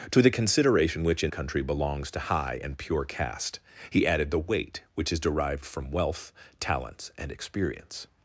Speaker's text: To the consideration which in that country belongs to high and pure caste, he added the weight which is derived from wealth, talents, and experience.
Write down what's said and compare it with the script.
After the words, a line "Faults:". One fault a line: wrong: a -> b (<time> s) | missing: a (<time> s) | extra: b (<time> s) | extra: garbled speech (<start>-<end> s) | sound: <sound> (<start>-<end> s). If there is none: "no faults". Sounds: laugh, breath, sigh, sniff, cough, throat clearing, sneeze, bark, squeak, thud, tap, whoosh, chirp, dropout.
To the consideration which in country belongs to high and pure caste, he added the weight which is derived from wealth, talents, and experience.
Faults:
missing: that (1.3 s)